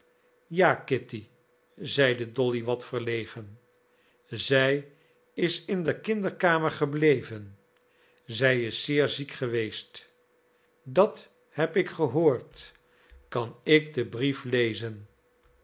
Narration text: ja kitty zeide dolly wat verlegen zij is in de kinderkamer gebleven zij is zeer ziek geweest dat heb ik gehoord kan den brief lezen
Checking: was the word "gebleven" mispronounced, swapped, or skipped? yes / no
no